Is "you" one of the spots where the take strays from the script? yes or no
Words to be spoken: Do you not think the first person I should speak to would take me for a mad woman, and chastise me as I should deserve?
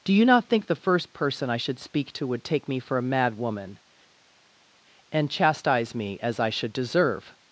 no